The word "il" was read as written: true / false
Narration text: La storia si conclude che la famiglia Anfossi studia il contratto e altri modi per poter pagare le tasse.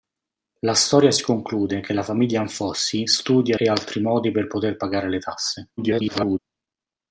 false